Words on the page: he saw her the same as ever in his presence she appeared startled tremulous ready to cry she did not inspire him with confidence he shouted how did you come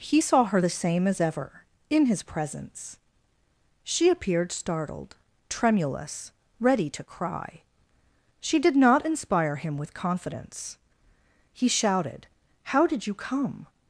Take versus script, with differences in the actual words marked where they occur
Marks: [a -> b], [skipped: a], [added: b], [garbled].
he saw her the same as ever in his presence she appeared startled tremulous ready to cry she did not inspire him with confidence he shouted how did you come